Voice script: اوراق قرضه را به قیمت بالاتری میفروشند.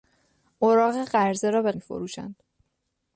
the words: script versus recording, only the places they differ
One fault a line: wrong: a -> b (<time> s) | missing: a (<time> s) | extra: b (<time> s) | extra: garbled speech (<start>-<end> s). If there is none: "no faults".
missing: قیمت بالاتری (1.7 s)